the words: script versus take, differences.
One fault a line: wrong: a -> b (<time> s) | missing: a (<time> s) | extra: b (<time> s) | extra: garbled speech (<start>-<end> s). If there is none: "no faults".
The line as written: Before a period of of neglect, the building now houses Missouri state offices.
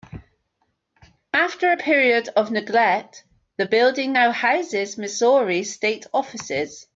wrong: Before -> After (1.3 s)
missing: of (2.5 s)